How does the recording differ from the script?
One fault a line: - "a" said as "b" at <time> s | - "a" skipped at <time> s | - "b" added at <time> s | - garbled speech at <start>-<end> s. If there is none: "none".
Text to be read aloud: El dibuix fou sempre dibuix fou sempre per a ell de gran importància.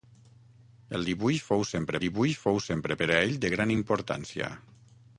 none